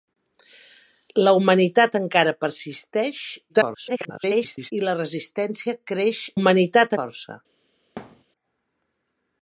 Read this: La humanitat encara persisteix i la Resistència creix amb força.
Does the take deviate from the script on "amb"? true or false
true